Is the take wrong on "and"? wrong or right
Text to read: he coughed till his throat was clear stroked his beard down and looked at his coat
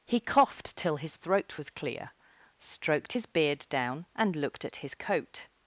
right